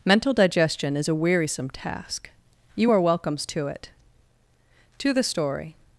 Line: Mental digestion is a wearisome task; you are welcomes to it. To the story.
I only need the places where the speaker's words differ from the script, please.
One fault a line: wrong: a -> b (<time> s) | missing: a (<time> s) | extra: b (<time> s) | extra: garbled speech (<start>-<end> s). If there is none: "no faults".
no faults